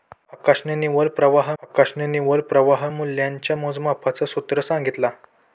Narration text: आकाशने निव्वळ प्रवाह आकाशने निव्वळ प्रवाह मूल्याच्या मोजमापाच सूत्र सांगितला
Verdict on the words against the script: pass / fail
pass